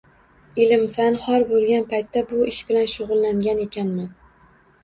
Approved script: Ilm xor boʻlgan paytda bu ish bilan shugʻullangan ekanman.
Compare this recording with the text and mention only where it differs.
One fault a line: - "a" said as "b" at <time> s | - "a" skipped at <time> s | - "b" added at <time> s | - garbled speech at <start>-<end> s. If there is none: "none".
- "fan" added at 0.9 s